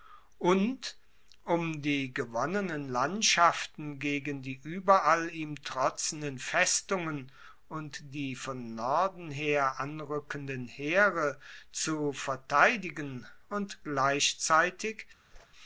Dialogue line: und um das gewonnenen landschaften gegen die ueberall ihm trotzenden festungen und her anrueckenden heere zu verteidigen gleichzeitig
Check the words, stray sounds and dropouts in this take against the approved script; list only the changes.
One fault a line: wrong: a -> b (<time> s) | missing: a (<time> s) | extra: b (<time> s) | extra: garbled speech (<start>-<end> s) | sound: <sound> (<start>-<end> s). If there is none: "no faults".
wrong: das -> die (1.8 s)
extra: die von norden (8.1 s)
extra: und (13.5 s)
sound: whoosh (15.3-15.5 s)